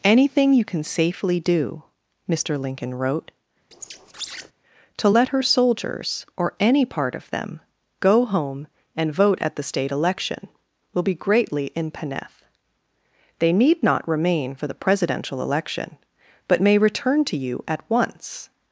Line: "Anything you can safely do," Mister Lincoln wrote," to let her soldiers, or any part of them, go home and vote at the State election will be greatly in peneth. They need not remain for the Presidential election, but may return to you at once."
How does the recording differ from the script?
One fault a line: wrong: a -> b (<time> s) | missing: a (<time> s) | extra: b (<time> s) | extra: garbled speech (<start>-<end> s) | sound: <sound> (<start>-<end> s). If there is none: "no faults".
sound: squeak (3.7-4.5 s)